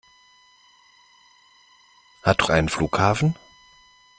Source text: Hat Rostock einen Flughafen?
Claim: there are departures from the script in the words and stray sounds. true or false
true